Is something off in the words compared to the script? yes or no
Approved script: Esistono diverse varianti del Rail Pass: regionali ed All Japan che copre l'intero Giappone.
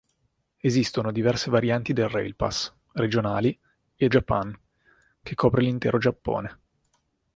yes